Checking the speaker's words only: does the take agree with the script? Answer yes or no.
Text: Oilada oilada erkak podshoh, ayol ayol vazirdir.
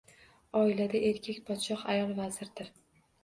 no